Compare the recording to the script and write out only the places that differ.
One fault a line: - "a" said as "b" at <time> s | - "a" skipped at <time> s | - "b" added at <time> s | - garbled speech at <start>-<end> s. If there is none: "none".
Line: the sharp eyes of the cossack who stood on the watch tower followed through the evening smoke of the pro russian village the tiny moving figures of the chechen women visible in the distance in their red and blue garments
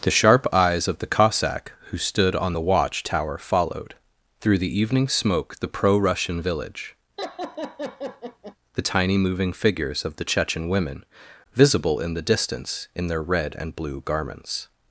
- "of" skipped at 5.6 s